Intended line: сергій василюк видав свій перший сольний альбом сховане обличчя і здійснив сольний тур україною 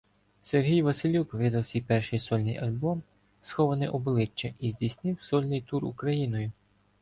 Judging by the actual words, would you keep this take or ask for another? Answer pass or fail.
pass